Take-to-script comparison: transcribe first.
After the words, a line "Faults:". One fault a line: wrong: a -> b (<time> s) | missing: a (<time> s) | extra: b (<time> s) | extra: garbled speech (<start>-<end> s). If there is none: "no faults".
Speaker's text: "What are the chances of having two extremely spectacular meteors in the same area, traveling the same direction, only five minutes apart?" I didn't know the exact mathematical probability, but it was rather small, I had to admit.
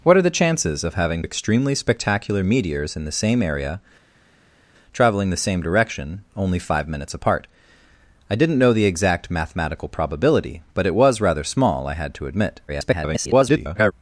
"What are the chances of having extremely spectacular meteors in the same area, traveling the same direction, only five minutes apart?" I didn't know the exact mathematical probability, but it was rather small, I had to admit. [garbled]
Faults:
missing: two (1.2 s)
extra: garbled speech (12.7-13.9 s)